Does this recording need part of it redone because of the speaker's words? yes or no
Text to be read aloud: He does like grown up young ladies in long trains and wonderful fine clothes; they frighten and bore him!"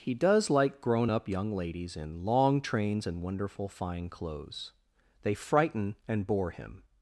no